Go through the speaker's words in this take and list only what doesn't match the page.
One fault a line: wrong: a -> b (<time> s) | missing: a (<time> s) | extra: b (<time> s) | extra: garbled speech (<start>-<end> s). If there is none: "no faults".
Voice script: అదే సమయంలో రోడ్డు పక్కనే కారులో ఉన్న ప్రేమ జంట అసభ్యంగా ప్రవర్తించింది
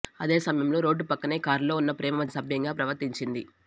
missing: జంట (2.2 s)